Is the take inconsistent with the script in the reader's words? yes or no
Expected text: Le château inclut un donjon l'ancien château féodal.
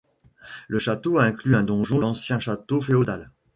no